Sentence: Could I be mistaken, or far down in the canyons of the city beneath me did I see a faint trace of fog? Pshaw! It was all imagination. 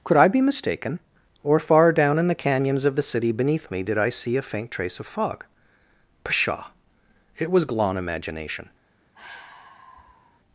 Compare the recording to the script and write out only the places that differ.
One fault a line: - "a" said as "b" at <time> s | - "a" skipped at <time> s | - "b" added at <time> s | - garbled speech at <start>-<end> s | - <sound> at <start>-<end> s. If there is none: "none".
- "all" said as "glon" at 7.7 s
- sigh at 9.1-10.4 s